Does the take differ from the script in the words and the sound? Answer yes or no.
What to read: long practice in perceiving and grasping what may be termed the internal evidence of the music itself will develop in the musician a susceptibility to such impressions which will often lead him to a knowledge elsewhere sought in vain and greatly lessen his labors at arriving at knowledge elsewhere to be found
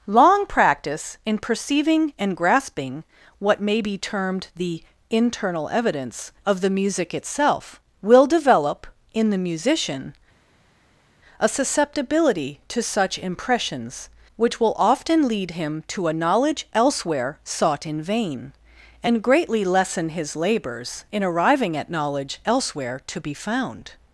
yes